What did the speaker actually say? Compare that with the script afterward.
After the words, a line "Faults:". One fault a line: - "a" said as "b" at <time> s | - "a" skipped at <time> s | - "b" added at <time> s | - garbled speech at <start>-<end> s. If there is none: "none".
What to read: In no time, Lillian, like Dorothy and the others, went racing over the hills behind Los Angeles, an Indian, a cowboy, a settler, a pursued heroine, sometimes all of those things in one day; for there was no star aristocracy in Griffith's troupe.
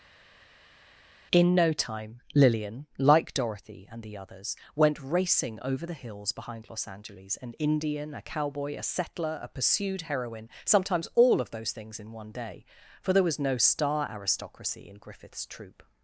In no time, Lillian, like Dorothy and the others, went racing over the hills behind Los Angeles, an Indian, a cowboy, a settler, a pursued heroine, sometimes all of those things in one day; for there was no star aristocracy in Griffith's troupe.
Faults:
none